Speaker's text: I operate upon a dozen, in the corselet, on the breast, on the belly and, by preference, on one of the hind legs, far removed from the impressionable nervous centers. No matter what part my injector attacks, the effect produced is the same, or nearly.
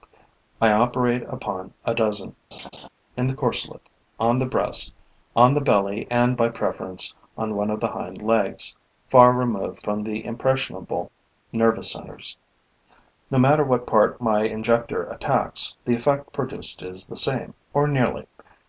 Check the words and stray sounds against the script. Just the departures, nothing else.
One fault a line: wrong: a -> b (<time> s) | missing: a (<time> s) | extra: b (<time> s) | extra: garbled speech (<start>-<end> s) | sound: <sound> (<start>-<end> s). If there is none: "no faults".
sound: laugh (2.5-2.9 s)